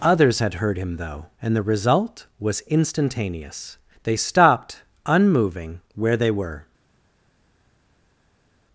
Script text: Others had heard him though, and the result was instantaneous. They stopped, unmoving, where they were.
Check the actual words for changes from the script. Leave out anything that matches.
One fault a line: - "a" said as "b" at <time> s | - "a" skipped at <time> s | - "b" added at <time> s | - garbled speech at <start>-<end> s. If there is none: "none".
none